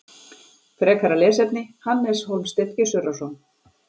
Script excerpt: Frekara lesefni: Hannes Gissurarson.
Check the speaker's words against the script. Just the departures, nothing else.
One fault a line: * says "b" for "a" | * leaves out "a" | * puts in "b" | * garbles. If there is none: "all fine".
* puts in "Hólmsteinn"